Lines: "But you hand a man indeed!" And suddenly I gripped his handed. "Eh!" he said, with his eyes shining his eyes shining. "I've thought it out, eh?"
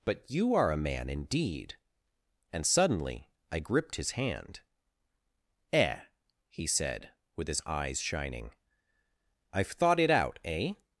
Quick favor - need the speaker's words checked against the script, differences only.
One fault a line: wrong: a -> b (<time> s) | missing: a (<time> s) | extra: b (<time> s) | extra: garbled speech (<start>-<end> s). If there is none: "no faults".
wrong: hand -> are (0.6 s)
wrong: handed -> hand (4.1 s)
missing: his eyes shining (8.6 s)